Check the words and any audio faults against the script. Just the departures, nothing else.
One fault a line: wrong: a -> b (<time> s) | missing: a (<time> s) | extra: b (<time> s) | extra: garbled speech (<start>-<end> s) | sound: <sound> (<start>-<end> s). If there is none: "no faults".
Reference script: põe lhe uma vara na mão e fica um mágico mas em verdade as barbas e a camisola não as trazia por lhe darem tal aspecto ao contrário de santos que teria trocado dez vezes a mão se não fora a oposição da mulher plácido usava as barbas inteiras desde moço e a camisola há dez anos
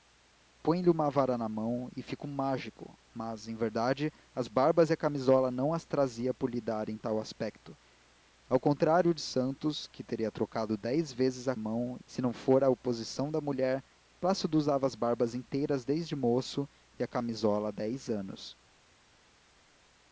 no faults